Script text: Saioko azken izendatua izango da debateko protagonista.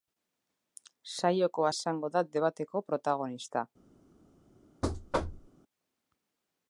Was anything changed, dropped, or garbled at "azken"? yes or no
yes